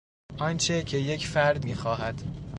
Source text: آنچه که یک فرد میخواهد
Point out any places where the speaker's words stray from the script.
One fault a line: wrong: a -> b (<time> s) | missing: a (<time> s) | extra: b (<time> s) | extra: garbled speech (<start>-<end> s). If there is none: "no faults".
no faults